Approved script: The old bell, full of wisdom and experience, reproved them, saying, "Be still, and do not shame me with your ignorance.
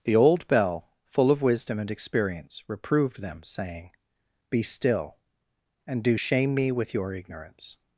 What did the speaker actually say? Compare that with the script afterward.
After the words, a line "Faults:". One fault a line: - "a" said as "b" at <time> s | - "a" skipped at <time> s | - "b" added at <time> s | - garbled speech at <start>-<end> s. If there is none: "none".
The old bell, full of wisdom and experience, reproved them, saying, "Be still, and do shame me with your ignorance.
Faults:
- "not" skipped at 6.2 s